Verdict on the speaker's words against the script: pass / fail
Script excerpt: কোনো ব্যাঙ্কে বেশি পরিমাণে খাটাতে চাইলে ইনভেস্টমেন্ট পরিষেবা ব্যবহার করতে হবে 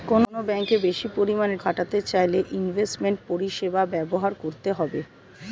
pass